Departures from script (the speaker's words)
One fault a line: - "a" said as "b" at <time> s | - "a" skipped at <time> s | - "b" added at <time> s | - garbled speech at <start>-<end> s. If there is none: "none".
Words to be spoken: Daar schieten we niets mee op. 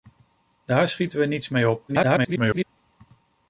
- garbled speech at 1.9-2.6 s